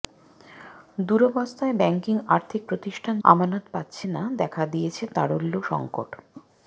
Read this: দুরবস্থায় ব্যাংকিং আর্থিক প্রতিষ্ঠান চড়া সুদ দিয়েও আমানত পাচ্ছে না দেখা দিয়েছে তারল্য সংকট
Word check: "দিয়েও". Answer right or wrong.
wrong